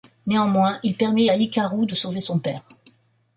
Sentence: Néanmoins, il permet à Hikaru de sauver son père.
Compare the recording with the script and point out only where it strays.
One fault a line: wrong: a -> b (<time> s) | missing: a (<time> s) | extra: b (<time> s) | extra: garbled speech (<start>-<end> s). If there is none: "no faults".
no faults